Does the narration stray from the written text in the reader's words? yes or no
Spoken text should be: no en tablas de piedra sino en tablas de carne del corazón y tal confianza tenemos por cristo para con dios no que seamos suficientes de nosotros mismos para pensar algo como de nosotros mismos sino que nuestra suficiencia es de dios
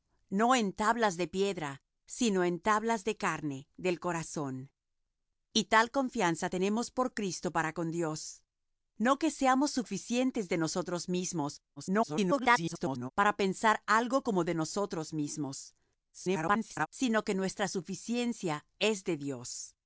yes